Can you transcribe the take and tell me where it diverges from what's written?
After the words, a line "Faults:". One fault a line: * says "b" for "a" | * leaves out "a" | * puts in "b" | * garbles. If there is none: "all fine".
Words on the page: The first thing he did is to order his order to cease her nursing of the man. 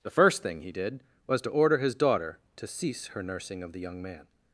The first thing he did was to order his daughter to cease her nursing of the young man.
Faults:
* says "was" for "is"
* says "daughter" for "order"
* puts in "young"